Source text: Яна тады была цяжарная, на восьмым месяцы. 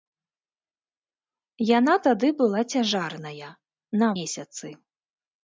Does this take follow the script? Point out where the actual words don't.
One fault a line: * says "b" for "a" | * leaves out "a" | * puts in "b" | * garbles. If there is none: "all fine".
* leaves out "восьмым"